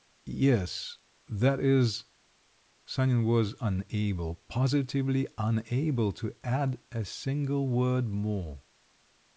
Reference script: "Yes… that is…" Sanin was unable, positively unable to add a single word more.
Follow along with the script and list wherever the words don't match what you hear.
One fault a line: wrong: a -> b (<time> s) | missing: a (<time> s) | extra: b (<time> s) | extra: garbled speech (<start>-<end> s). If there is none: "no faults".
no faults